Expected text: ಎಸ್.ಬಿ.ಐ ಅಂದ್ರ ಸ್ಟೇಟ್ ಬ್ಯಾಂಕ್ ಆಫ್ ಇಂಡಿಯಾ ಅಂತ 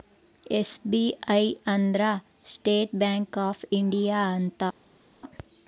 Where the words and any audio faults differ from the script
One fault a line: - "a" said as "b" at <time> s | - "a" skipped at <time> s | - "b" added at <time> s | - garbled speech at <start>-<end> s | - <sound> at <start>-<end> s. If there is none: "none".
none